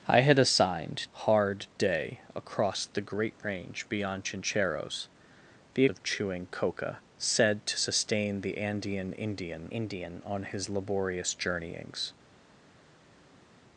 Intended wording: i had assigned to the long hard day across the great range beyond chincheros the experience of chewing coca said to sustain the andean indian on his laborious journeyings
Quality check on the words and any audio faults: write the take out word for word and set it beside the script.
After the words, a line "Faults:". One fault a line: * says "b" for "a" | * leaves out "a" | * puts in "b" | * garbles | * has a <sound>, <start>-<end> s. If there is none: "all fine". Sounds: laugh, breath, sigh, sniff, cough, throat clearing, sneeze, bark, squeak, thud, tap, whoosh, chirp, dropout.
i had assigned hard day across the great range beyond chincheros the of chewing coca said to sustain the andean indian indian on his laborious journeyings
Faults:
* leaves out "to the long"
* leaves out "experience"
* puts in "indian"